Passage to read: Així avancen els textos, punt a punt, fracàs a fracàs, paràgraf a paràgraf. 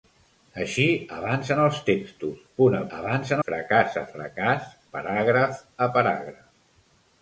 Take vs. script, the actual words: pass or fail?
fail